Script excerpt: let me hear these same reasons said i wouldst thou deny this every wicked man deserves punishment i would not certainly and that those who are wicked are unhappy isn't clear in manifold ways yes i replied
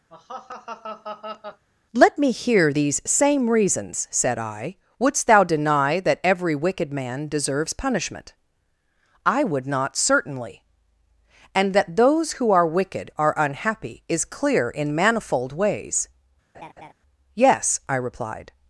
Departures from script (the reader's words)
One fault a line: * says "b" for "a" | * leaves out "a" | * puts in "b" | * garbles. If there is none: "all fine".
* says "that" for "this"
* says "is" for "isn't"